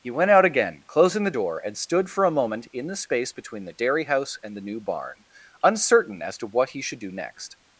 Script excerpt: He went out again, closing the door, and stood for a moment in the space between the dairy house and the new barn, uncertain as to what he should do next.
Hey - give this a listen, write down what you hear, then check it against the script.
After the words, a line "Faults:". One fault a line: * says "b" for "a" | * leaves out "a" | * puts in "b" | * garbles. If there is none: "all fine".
He went out again, closing the door, and stood for a moment in the space between the dairy house and the new barn, uncertain as to what he should do next.
Faults:
all fine